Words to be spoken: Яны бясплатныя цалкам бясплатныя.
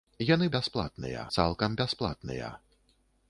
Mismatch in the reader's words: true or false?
false